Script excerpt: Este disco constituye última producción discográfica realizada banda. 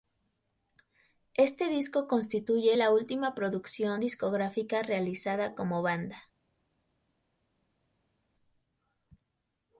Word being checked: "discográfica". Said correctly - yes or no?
yes